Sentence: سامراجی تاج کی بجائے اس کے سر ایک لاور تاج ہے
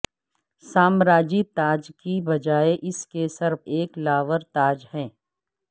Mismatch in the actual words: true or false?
false